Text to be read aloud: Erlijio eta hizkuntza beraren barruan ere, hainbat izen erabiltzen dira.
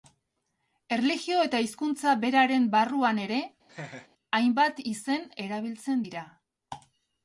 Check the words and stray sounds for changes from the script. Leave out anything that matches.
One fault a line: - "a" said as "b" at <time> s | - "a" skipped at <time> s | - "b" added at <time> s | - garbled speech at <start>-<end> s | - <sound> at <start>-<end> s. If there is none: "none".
- laugh at 3.7-4.1 s